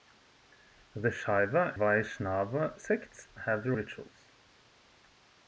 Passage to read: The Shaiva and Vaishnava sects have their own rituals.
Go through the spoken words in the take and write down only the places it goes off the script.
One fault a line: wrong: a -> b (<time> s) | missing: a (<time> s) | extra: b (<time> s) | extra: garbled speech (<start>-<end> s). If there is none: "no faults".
missing: and (1.8 s)
missing: own (3.8 s)